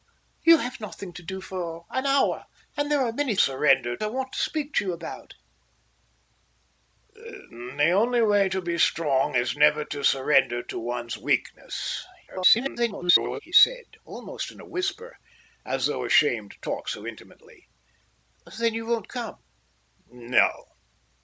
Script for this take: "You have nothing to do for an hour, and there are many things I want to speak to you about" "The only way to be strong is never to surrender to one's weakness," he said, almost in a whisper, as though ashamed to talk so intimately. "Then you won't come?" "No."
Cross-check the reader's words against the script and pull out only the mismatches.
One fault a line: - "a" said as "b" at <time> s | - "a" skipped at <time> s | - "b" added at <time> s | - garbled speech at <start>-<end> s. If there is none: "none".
- "things" said as "surrender" at 3.4 s
- garbled speech at 12.3-13.4 s